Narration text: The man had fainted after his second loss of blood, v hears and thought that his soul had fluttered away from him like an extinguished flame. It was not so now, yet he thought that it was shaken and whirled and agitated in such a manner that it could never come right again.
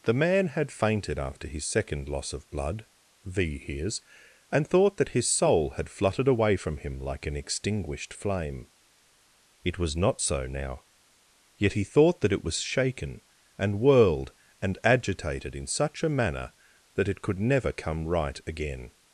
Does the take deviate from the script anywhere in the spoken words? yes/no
no